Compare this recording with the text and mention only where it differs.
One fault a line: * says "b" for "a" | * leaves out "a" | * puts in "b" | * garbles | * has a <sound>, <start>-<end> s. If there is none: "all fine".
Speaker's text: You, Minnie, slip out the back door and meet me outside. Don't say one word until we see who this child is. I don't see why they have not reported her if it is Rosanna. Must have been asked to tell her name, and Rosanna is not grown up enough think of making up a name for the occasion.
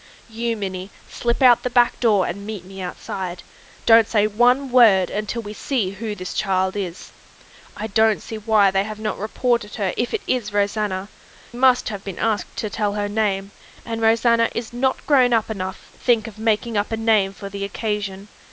all fine